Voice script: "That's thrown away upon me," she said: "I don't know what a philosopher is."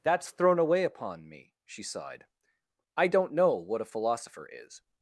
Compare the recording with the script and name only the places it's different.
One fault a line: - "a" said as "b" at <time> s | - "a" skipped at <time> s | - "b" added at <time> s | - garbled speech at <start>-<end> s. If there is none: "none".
- "said" said as "sighed" at 1.8 s